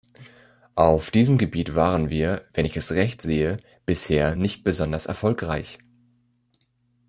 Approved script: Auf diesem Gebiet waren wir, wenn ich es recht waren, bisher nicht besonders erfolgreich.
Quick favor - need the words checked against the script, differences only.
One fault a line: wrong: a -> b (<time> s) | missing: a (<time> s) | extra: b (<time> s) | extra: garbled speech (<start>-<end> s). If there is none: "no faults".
wrong: waren -> sehe (3.2 s)